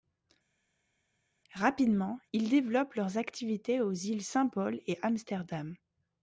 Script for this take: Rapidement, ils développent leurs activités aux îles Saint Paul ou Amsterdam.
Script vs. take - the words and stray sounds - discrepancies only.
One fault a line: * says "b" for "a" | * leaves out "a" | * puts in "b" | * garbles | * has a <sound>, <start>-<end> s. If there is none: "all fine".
* says "et" for "ou"